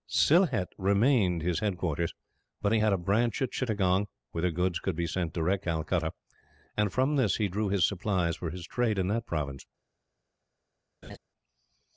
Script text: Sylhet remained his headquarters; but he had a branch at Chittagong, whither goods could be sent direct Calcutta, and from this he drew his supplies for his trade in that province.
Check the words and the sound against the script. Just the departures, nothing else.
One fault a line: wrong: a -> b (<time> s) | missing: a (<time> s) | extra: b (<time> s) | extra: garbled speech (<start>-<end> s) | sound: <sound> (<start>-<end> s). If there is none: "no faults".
sound: laugh (11.0-11.2 s)